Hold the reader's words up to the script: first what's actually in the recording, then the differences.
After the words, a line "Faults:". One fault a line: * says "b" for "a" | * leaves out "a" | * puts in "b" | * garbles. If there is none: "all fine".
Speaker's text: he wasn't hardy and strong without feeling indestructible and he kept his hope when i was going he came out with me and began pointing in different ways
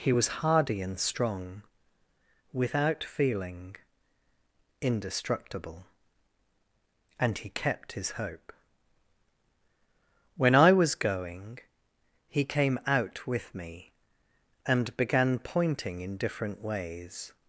he was hardy and strong without feeling indestructible and he kept his hope when i was going he came out with me and began pointing in different ways
Faults:
* says "was" for "wasn't"